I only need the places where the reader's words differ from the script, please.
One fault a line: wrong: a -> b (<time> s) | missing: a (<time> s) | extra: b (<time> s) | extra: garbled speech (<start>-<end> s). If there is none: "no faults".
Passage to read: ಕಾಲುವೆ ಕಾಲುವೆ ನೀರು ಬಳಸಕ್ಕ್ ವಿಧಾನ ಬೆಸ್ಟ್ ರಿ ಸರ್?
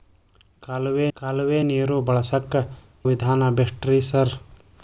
no faults